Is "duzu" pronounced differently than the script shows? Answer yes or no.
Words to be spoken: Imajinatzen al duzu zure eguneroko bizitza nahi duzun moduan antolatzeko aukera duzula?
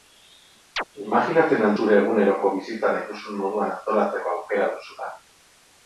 yes